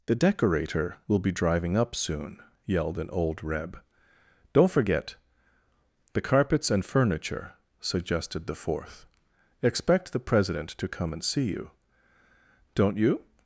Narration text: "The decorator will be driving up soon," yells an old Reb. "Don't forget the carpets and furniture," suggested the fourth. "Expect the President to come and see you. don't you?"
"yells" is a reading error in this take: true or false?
true